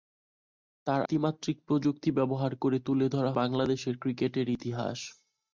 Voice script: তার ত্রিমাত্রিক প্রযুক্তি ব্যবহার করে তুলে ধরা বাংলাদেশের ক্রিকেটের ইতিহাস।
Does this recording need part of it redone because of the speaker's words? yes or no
no